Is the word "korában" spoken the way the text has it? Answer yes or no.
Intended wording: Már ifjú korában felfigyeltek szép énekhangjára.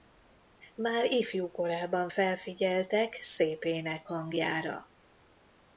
yes